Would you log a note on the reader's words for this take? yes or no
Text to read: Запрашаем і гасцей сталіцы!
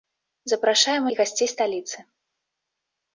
no